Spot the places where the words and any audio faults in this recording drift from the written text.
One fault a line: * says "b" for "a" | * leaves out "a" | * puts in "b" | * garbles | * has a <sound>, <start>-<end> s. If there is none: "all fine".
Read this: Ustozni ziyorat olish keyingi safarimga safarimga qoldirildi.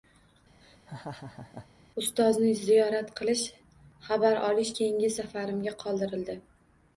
* has a laugh, 0.6-1.7 s
* puts in "qilish xabar"
* leaves out "safarimga"